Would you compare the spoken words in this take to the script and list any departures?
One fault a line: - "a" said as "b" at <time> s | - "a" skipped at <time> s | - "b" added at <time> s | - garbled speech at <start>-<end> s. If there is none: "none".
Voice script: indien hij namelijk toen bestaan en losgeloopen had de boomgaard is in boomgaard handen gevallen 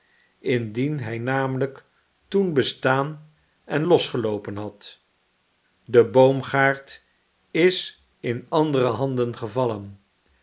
- "boomgaard" said as "andere" at 8.5 s